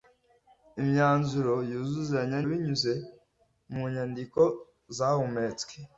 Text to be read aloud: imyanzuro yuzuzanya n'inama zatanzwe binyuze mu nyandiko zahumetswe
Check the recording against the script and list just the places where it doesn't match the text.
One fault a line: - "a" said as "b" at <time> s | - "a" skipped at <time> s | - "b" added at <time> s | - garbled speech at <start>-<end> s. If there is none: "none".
- "n'inama zatanzwe" skipped at 2.4 s